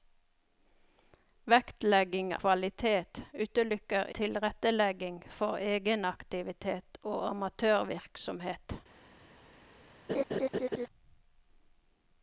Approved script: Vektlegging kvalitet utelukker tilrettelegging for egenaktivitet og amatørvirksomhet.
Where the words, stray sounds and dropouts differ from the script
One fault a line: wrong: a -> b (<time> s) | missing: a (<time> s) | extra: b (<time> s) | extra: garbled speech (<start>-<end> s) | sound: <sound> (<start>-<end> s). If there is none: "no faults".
sound: laugh (10.1-10.9 s)